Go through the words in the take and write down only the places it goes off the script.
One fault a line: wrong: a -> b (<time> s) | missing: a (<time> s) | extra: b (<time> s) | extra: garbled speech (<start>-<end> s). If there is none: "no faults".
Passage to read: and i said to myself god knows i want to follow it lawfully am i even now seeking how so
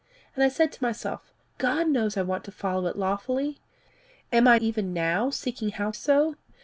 no faults